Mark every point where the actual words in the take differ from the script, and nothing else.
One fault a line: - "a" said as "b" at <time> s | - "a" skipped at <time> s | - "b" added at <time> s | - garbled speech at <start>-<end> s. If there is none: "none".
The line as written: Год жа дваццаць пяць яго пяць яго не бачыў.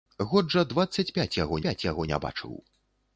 none